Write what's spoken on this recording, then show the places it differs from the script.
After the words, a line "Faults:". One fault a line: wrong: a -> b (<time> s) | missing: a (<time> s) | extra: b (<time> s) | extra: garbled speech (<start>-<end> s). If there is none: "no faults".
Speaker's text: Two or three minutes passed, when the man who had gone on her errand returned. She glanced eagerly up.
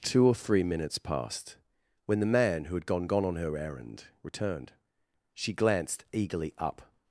Two or three minutes passed, when the man who had gone gone on her errand returned. She glanced eagerly up.
Faults:
extra: gone (3.0 s)